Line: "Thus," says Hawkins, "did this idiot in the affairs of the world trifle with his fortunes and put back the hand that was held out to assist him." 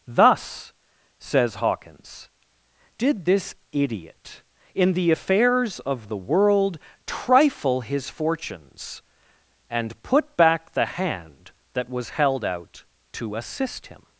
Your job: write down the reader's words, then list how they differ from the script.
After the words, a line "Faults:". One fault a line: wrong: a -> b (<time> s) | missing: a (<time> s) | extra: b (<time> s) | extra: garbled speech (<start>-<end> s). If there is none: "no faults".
"Thus," says Hawkins, "did this idiot in the affairs of the world trifle his fortunes and put back the hand that was held out to assist him."
Faults:
missing: with (7.8 s)